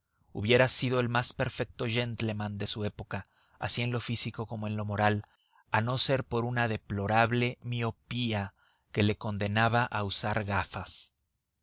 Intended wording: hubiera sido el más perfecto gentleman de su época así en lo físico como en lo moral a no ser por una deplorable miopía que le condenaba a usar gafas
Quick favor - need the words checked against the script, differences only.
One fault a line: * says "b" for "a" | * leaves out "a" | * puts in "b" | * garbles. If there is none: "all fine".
all fine